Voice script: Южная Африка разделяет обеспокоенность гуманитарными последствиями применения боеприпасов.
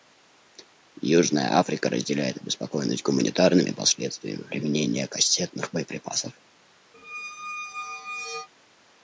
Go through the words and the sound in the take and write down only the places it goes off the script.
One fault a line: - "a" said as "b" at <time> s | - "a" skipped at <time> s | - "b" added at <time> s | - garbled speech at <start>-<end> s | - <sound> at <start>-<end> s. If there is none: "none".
- "кассетных" added at 5.1 s
- squeak at 6.9-8.5 s